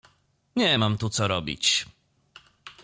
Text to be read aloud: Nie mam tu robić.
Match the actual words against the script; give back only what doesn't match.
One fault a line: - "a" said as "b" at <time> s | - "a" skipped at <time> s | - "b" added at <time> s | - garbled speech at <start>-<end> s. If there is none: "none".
- "co" added at 1.1 s